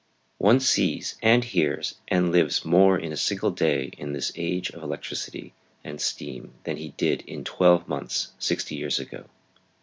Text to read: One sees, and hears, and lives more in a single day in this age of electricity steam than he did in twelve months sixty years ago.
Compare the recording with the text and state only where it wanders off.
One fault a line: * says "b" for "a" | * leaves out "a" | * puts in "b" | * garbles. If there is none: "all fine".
* puts in "and"